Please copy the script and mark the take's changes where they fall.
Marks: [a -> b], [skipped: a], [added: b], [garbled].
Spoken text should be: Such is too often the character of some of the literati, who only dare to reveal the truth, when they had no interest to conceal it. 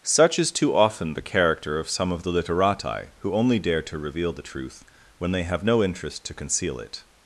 Such is too often the character of some of the literati, who only dare to reveal the truth, when they [had -> have] no interest to conceal it.